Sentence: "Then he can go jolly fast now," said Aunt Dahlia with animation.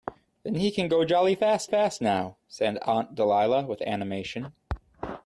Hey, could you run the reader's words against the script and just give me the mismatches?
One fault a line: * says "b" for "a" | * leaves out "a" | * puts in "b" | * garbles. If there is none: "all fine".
* puts in "fast"